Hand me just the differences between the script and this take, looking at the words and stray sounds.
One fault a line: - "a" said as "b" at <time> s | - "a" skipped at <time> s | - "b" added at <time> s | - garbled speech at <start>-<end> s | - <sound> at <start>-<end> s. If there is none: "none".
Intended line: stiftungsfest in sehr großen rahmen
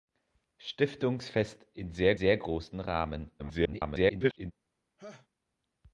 - "sehr" added at 2.1 s
- garbled speech at 3.4-4.5 s
- laugh at 5.0-5.3 s